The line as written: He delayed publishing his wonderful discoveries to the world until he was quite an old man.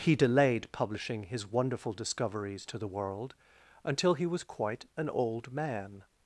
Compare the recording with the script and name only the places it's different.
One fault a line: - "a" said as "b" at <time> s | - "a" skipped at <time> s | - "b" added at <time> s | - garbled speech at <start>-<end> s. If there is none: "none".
none